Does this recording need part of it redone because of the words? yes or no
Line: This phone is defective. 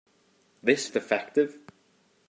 yes